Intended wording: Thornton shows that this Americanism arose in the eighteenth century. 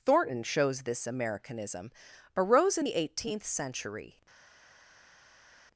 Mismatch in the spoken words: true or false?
true